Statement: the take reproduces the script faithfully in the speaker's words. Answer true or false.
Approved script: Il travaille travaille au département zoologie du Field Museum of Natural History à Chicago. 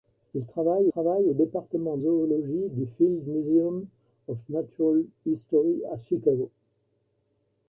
true